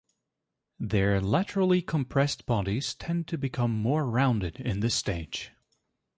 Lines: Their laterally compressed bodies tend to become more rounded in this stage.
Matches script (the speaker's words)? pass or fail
pass